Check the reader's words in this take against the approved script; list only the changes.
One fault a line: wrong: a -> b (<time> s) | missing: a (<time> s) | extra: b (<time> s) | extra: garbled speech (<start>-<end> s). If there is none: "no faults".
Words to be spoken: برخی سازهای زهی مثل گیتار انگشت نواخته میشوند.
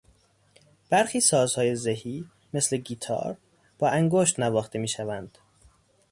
extra: با (3.8 s)